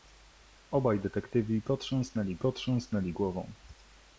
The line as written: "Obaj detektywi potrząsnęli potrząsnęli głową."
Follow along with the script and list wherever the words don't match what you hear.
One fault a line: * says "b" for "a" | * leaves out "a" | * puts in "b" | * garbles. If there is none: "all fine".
all fine